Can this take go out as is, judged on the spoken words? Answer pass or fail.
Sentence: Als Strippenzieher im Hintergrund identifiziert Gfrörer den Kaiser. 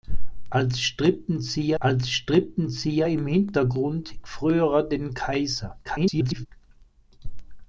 fail